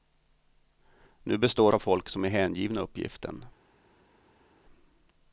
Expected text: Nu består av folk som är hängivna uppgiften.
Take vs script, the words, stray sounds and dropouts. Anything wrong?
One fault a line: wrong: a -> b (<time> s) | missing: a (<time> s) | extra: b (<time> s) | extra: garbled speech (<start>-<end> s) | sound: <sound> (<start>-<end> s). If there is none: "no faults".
no faults